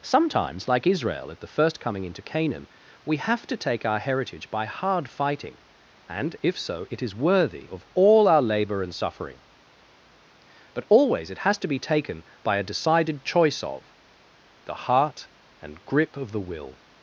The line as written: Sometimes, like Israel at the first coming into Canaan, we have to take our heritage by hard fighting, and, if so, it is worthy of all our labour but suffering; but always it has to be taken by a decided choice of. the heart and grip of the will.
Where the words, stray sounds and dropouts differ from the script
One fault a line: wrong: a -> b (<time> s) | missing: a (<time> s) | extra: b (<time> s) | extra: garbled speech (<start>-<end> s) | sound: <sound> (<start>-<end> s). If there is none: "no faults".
wrong: but -> and (8.8 s)